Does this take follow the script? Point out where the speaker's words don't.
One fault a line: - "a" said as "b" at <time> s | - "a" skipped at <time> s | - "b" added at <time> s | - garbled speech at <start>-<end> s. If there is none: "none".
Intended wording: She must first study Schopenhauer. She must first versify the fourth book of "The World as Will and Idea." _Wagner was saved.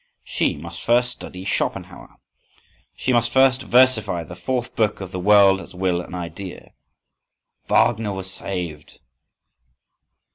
none